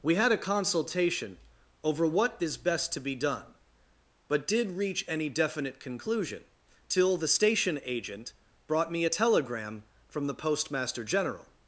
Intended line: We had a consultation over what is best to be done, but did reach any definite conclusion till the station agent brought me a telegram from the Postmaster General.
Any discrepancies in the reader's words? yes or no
no